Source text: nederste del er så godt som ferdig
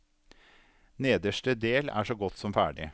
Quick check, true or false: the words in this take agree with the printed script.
true